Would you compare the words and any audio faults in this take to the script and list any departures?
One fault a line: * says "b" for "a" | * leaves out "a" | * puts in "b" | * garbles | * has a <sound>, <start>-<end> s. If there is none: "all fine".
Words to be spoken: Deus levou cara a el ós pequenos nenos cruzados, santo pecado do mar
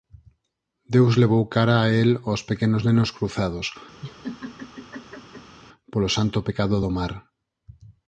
* has a laugh, 4.0-5.6 s
* puts in "polo"